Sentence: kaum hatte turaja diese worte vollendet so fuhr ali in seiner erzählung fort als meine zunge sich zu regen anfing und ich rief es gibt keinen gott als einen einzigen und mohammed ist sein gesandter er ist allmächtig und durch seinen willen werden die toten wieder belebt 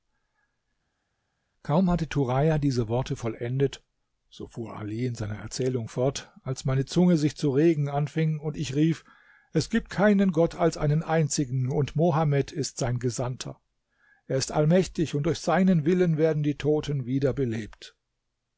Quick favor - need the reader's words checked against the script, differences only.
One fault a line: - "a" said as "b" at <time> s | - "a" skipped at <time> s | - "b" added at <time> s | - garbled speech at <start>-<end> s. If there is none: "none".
none